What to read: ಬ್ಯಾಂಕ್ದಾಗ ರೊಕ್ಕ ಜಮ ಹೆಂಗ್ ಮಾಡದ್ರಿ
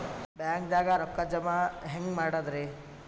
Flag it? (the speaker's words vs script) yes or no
no